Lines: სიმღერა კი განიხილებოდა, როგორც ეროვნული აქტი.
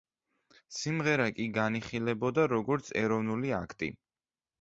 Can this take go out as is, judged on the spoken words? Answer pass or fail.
pass